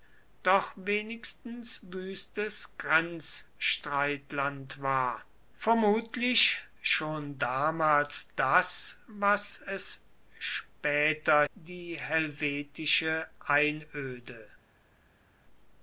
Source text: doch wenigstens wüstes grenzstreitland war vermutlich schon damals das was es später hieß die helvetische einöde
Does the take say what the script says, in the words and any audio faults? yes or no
no